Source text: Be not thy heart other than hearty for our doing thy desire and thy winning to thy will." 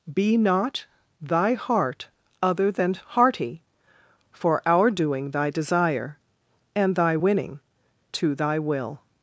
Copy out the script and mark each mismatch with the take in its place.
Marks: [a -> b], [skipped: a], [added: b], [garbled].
Be not thy heart other than hearty for our doing thy desire and thy winning to thy will."